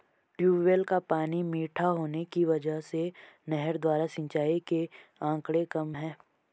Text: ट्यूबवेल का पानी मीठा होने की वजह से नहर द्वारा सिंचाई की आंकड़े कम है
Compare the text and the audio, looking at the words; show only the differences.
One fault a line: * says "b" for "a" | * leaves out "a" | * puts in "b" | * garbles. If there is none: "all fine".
* says "के" for "की"